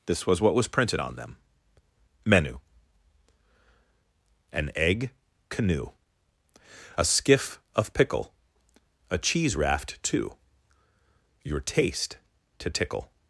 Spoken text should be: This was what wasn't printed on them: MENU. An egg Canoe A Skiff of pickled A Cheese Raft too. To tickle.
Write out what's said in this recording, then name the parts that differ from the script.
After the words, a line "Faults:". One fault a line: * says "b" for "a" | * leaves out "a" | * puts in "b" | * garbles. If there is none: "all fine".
This was what was printed on them: MENU. An egg Canoe A Skiff of pickle A Cheese Raft too. Your taste to tickle.
Faults:
* says "was" for "wasn't"
* says "pickle" for "pickled"
* puts in "Your taste"